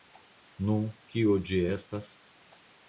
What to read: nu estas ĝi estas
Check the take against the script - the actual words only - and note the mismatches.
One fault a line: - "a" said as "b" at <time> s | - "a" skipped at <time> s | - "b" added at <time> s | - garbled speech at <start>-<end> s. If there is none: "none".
- "estas" said as "kio" at 1.1 s